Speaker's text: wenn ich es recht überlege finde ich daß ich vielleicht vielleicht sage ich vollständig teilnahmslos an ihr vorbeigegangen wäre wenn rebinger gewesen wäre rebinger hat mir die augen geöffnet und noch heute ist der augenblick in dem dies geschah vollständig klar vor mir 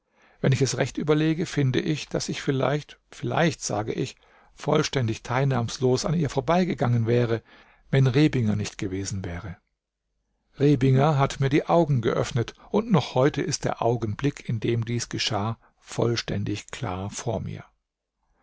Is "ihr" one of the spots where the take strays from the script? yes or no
no